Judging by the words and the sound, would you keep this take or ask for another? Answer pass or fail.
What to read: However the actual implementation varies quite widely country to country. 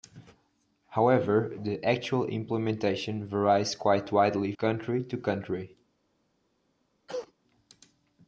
fail